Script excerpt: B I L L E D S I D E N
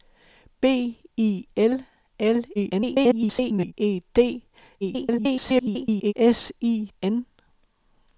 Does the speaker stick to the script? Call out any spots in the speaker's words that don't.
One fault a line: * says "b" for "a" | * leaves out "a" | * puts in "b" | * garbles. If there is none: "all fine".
* garbles
* garbles
* leaves out "D E"